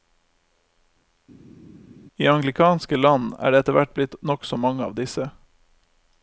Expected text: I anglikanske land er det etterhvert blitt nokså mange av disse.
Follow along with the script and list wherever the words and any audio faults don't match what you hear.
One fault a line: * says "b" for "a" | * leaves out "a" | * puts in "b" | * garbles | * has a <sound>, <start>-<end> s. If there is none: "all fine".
all fine